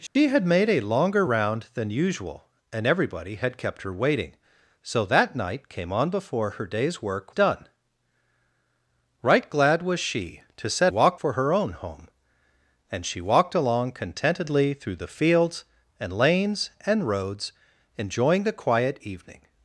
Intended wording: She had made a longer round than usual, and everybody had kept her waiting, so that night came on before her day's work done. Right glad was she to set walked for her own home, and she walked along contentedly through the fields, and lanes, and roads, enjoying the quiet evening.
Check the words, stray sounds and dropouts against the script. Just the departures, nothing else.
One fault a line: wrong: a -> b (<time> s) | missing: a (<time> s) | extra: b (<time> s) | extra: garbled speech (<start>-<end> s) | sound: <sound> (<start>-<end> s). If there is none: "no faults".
sound: dropout (0.1-0.2 s)